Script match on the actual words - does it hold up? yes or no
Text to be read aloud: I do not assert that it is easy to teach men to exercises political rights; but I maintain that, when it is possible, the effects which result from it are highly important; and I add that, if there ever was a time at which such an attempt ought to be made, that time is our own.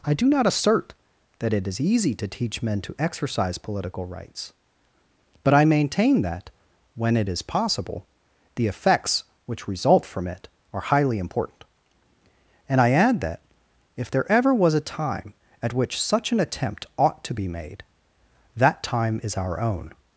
no